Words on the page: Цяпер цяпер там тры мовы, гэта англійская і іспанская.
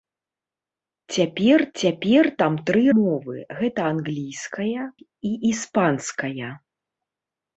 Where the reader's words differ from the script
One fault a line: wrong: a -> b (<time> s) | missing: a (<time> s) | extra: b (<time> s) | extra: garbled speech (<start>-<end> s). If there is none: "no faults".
no faults